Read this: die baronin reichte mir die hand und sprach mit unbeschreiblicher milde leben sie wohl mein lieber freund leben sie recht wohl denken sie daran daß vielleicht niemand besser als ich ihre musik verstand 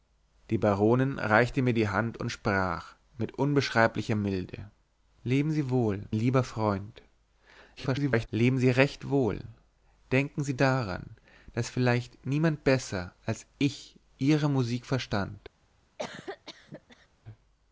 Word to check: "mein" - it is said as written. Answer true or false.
false